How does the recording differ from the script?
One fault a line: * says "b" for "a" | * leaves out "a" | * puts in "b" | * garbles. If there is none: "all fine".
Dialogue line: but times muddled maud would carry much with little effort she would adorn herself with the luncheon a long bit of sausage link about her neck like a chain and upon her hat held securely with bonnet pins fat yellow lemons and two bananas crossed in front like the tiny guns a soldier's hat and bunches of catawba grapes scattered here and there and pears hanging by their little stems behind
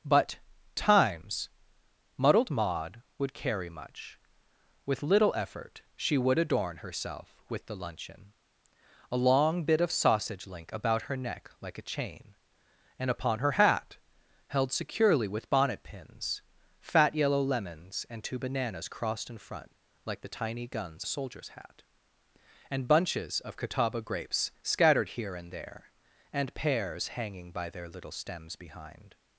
all fine